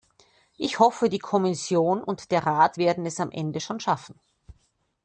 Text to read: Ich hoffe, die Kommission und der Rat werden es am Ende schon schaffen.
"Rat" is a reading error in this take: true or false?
false